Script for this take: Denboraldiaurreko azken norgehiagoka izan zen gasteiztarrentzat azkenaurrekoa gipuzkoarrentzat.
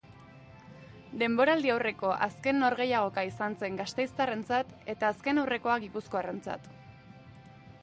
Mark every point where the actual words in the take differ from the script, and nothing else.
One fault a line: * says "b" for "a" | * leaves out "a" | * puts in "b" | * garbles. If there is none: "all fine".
* puts in "eta"